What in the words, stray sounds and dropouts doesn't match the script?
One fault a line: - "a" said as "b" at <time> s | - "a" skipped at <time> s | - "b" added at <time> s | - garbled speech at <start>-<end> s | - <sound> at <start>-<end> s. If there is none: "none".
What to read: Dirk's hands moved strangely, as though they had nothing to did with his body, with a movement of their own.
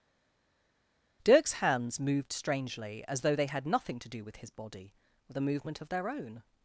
- "did" said as "do" at 4.1 s